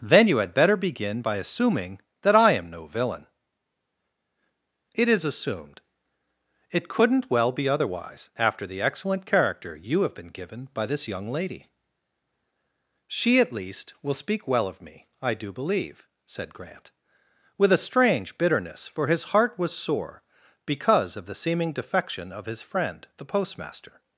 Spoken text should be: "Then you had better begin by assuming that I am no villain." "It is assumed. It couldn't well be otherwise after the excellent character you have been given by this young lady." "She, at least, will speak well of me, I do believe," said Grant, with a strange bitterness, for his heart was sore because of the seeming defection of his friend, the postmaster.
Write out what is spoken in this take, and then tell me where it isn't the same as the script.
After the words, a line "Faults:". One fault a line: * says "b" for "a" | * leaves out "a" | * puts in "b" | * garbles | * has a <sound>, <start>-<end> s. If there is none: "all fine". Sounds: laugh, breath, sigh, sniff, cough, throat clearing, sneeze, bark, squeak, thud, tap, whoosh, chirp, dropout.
"Then you had better begin by assuming that I am no villain." "It is assumed. It couldn't well be otherwise after the excellent character you have been given by this young lady." "She, at least, will speak well of me, I do believe," said Grant, with a strange bitterness, for his heart was sore because of the seeming defection of his friend, the postmaster.
Faults:
all fine